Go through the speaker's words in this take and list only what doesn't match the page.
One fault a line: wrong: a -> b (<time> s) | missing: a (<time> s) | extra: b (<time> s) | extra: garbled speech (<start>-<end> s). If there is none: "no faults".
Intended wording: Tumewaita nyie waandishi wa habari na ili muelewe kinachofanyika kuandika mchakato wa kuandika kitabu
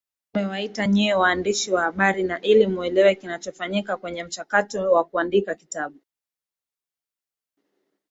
wrong: kuandika -> kwenye (4.0 s)